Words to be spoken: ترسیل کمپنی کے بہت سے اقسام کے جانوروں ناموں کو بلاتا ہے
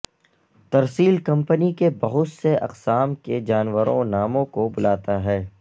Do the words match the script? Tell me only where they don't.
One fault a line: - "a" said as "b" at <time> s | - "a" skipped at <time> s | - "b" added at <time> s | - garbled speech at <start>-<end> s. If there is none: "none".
none